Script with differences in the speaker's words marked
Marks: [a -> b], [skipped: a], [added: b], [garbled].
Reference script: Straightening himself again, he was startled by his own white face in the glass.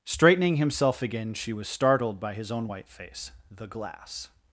Straightening himself again, [he -> she] was startled by his own white face [skipped: in] the glass.